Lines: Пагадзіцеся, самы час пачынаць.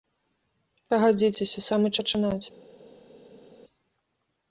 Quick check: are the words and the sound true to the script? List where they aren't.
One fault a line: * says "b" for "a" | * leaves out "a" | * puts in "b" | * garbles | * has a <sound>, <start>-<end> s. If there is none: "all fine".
* leaves out "час"